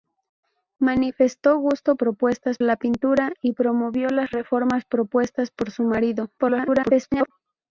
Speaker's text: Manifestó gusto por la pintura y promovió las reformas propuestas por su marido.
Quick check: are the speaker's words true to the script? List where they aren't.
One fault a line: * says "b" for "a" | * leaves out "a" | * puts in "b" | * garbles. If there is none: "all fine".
* says "propuestas" for "por"
* garbles